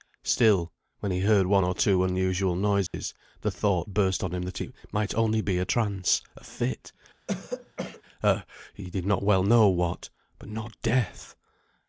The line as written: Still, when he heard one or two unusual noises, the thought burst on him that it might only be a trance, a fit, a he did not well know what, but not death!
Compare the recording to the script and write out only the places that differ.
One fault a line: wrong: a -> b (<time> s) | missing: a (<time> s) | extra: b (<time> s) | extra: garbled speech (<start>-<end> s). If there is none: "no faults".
no faults